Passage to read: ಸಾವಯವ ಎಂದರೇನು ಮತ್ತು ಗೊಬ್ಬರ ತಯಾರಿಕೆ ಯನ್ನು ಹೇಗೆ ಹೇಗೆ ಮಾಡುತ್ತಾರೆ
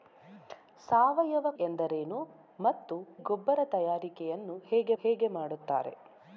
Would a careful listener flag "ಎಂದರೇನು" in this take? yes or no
no